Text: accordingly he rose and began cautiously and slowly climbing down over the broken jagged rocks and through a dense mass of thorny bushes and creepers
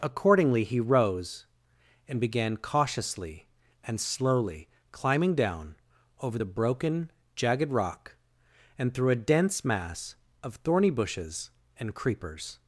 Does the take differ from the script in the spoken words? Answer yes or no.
yes